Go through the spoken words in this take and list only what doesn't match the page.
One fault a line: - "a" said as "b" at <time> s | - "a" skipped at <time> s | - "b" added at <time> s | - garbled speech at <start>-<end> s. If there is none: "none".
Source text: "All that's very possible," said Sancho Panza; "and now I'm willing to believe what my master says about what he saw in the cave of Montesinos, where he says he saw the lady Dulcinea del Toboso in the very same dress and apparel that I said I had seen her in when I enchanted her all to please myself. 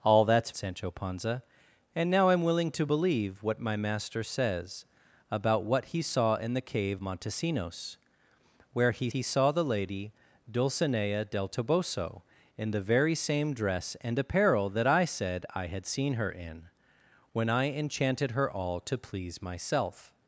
- "very possible said" skipped at 0.5 s
- "of" skipped at 7.0 s
- "says" skipped at 9.1 s